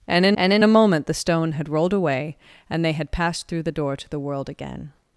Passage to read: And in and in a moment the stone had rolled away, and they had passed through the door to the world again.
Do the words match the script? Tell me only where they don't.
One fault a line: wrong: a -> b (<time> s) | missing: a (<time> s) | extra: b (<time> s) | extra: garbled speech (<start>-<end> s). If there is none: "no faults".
no faults